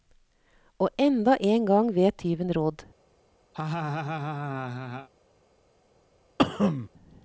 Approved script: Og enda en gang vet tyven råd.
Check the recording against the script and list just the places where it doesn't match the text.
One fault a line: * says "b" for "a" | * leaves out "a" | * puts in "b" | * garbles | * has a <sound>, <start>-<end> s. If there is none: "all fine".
* has a laugh, 3.5-5.1 s
* has a cough, 6.4-6.9 s